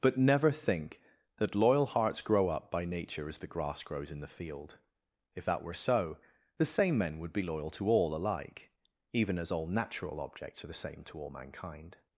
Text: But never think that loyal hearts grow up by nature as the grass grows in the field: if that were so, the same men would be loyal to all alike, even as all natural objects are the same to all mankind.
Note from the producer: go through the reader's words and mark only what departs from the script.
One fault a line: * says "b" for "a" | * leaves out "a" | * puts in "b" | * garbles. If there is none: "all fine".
all fine